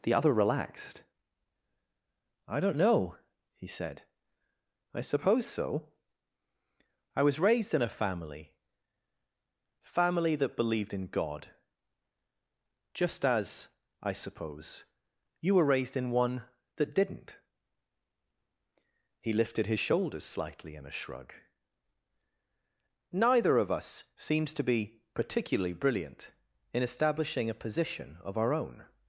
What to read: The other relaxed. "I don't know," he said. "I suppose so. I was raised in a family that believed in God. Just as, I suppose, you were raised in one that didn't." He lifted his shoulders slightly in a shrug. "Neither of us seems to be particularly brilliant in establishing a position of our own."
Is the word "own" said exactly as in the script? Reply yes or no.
yes